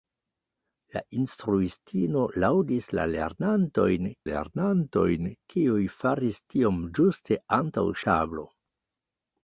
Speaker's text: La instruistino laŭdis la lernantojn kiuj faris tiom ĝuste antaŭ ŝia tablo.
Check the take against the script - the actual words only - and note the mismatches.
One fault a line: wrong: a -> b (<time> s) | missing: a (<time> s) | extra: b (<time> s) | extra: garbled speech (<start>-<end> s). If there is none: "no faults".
extra: lernantojn (4.3 s)
missing: ŝia (7.9 s)